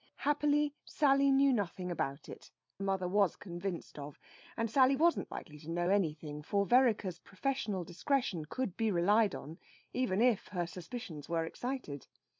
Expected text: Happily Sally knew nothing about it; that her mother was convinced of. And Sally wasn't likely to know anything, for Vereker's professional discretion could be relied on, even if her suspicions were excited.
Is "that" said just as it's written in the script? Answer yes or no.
no